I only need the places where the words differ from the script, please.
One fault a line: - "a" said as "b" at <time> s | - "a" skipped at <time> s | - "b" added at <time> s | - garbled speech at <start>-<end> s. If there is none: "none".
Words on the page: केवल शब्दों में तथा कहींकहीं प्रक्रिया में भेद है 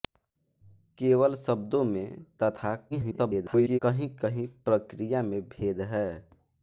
- garbled speech at 2.9-3.8 s